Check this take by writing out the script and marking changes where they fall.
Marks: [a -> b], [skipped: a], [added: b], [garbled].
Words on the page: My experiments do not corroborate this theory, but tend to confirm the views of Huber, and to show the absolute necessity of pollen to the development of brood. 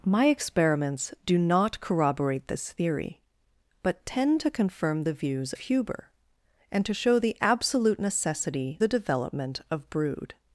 My experiments do not corroborate this theory, but tend to confirm the views [skipped: of] Huber, and to show the absolute necessity [skipped: of pollen to] the development of brood.